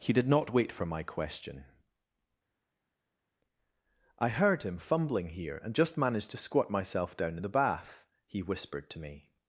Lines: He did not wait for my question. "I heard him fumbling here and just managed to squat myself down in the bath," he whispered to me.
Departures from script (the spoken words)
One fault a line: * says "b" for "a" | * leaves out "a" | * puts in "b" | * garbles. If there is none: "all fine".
all fine